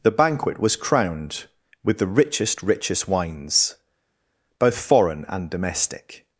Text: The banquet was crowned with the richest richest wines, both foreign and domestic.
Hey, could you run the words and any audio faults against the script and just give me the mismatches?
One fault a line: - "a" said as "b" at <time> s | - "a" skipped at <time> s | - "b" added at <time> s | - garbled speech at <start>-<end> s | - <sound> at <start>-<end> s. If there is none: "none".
none